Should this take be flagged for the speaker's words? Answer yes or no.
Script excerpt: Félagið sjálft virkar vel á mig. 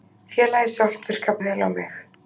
no